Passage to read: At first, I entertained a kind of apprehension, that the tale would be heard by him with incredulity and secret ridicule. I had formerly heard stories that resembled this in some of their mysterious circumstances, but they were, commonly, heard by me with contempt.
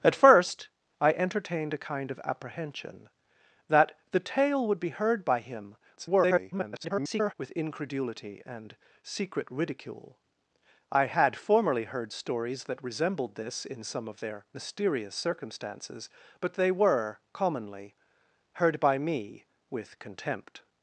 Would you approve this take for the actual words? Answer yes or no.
no